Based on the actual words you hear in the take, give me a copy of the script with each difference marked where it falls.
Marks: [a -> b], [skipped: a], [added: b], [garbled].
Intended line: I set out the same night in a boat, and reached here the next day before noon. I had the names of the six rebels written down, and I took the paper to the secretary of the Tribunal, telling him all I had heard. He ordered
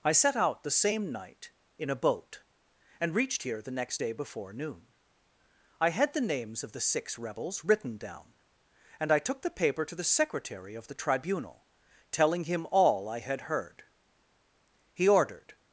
I set out the same night in a boat, and reached here the next day before noon. I had the names of the six rebels written down, and I took the paper to the secretary of the Tribunal, telling him all I had heard. He ordered